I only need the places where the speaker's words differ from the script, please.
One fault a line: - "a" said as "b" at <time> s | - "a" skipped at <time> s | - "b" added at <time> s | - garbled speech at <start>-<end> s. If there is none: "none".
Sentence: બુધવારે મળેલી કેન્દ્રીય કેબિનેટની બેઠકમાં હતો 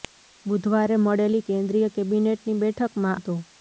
none